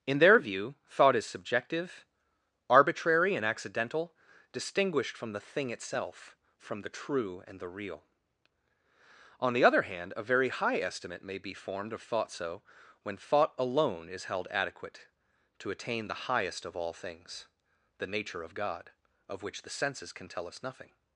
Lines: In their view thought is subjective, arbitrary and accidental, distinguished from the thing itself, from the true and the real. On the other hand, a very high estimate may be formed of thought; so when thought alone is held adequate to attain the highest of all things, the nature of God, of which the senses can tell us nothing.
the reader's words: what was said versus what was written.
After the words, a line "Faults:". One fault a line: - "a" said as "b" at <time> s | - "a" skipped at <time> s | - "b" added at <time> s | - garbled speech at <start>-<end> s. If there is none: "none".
In their view thought is subjective, arbitrary and accidental, distinguished from the thing itself, from the true and the real. On the other hand, a very high estimate may be formed of thought; so when thought alone is held adequate to attain the highest of all things, the nature of God, of which the senses can tell us nothing.
Faults:
none